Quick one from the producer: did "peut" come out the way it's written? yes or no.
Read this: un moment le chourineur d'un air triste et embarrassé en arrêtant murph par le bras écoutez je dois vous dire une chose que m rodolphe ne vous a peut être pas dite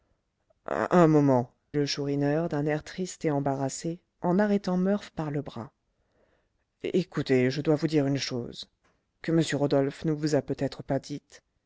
yes